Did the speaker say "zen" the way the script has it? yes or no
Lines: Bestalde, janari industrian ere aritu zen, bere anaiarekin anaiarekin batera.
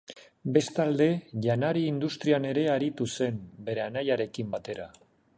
yes